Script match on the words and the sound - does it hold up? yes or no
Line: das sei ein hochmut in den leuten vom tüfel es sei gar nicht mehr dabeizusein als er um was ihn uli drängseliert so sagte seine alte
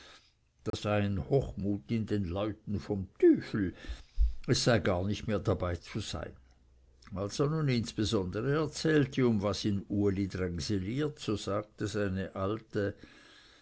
no